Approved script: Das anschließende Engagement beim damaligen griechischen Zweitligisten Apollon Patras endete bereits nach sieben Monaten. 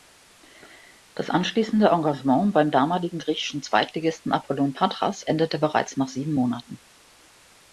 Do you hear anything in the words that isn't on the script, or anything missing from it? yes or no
no